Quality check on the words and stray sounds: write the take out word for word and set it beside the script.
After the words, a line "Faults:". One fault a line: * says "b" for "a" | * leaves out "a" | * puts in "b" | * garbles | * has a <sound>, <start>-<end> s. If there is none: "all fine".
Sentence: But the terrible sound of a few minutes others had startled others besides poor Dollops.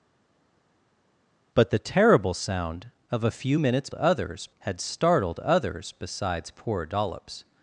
But the terrible sound of a few minutes others had startled others besides poor Dollops.
Faults:
all fine